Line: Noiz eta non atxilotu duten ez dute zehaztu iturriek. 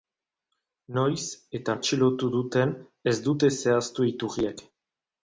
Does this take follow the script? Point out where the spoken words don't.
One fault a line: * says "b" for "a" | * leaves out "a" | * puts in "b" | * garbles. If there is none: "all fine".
* leaves out "non"